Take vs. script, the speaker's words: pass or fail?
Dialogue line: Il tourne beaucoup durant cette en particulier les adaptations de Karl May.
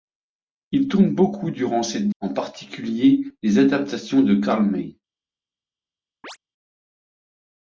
pass